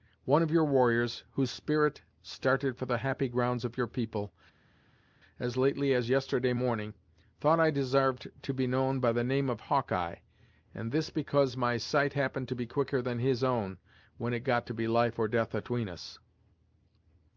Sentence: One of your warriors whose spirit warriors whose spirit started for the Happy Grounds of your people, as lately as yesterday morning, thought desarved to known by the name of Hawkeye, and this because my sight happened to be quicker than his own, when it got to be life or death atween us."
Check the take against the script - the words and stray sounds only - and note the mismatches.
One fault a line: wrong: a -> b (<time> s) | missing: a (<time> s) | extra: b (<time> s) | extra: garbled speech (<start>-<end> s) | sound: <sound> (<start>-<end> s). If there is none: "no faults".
missing: warriors whose spirit (2.0 s)
extra: I (7.6 s)
extra: be (8.5 s)